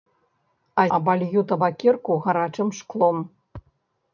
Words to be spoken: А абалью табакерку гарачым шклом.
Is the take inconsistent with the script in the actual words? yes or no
no